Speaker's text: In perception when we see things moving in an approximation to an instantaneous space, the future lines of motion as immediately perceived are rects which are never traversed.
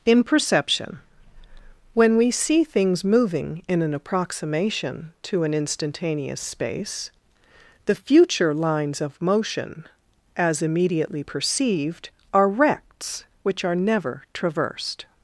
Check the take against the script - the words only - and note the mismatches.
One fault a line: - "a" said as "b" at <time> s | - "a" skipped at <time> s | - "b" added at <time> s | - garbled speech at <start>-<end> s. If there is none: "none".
none